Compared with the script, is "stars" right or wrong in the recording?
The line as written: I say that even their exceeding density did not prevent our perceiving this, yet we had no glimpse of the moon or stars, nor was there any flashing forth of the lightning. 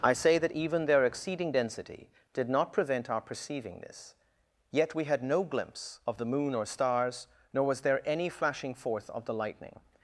right